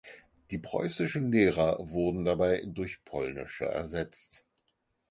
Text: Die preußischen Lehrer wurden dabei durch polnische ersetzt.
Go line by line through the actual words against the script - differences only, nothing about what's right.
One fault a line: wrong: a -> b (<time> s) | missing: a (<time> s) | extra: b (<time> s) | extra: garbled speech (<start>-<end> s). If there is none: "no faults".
no faults